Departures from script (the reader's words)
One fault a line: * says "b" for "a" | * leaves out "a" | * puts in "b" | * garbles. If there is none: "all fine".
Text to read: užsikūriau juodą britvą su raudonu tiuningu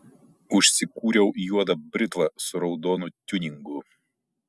all fine